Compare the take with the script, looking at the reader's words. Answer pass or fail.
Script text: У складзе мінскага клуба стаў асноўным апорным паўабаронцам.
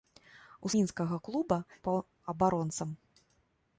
fail